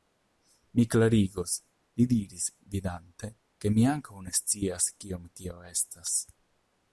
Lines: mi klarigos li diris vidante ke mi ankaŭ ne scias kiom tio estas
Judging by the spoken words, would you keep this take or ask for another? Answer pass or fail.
pass